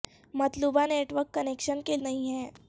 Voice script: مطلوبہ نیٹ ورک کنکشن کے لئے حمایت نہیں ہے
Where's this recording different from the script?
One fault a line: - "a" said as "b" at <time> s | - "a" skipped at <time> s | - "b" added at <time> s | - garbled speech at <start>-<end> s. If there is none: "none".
- "لئے حمایت" skipped at 2.0 s